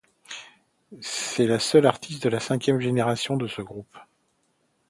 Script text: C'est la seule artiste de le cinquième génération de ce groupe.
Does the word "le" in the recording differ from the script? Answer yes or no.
yes